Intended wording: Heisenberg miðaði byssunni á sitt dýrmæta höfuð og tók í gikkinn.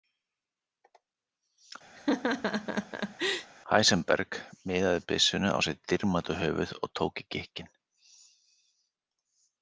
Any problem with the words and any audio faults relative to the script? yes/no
yes